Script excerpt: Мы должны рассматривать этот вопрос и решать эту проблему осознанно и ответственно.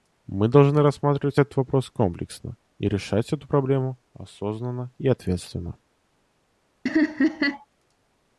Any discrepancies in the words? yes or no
yes